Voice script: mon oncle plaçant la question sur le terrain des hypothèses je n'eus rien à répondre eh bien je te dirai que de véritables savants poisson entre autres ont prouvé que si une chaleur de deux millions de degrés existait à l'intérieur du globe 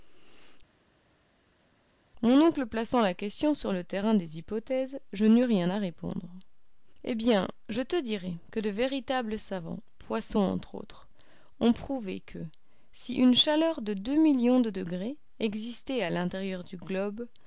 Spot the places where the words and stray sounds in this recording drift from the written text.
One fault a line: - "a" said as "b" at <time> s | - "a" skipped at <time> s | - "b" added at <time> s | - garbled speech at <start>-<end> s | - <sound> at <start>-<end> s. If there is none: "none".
none